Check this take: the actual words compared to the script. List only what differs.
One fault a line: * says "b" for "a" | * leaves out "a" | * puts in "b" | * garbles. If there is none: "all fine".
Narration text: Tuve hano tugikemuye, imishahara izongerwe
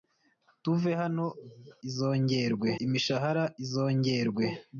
* says "izongerwe" for "tugikemuye"